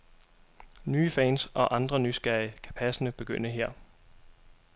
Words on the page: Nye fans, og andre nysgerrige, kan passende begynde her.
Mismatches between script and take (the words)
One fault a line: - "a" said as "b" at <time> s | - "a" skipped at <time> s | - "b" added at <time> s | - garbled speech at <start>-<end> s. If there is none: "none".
none